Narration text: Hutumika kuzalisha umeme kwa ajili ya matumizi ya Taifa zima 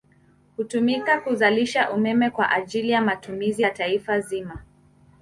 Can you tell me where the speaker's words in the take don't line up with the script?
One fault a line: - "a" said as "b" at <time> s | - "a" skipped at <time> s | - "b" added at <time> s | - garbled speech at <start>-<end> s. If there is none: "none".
none